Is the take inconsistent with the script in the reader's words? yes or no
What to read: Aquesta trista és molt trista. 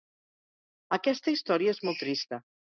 yes